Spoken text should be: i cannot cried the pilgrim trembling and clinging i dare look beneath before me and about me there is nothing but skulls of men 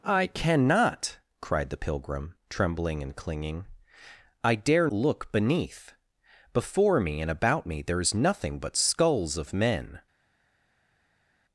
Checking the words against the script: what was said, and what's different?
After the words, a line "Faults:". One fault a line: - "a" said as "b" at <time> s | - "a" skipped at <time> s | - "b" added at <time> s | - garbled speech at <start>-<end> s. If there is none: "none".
i cannot cried the pilgrim trembling and clinging i dare look beneath before me and about me there is nothing but skulls of men
Faults:
none